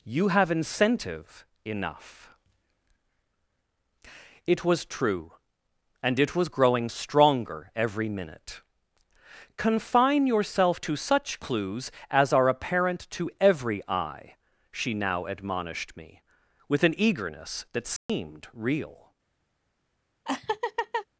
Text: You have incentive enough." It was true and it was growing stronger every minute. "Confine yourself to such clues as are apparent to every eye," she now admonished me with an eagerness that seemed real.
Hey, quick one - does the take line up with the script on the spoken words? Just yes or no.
yes